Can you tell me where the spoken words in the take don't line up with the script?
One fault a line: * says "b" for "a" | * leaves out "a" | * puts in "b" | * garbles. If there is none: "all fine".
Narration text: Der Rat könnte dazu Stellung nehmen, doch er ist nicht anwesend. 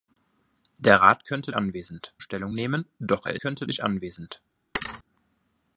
* says "anwesend" for "dazu"
* says "könnte" for "ist"